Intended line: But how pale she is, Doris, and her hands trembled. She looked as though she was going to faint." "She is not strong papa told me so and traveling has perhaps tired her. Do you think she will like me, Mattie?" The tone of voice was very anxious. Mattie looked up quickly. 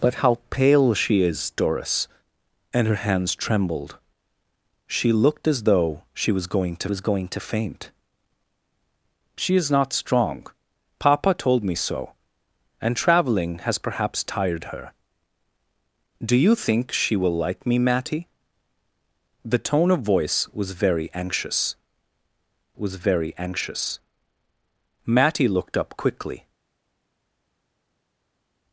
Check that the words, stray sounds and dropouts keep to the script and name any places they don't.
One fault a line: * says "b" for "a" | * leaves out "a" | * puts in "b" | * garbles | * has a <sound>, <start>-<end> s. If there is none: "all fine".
* puts in "was going to"
* puts in "was very anxious"